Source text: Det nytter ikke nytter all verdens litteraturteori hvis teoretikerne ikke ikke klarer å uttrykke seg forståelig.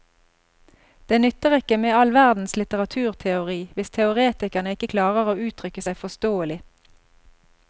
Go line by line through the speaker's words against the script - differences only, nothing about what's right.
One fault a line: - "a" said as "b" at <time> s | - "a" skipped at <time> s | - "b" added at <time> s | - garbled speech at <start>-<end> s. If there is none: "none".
- "nytter" said as "med" at 1.8 s
- "ikke" skipped at 4.9 s